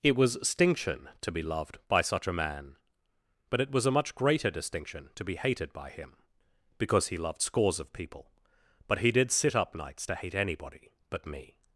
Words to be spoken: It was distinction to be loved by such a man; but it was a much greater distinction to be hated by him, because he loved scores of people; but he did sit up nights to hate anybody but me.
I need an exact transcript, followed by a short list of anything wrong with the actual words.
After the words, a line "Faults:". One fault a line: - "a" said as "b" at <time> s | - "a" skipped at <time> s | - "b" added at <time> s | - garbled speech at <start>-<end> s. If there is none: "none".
It was distinction to be loved by such a man; but it was a much greater distinction to be hated by him, because he loved scores of people; but he did sit up nights to hate anybody but me.
Faults:
none